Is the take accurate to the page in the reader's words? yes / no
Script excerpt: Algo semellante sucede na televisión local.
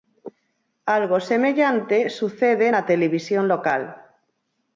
yes